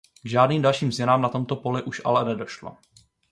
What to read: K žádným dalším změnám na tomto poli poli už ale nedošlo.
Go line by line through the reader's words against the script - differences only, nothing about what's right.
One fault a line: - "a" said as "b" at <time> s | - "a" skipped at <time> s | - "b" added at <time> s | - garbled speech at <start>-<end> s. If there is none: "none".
- "poli" skipped at 1.8 s